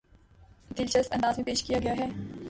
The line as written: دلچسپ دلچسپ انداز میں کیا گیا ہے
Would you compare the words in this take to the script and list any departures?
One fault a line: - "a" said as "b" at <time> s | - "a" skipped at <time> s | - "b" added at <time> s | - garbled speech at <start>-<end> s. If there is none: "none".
- "دلچسپ" skipped at 1.1 s
- "پیش" added at 1.4 s